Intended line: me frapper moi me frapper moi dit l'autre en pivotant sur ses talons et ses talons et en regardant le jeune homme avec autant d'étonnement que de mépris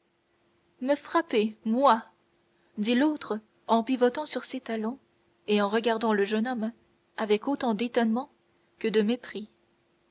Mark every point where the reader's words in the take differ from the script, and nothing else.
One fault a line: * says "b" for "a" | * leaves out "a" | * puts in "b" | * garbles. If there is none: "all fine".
* leaves out "me frapper moi"
* leaves out "ses talons et"